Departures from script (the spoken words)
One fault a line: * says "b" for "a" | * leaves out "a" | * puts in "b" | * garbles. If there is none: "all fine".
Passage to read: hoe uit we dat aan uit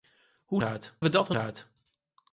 all fine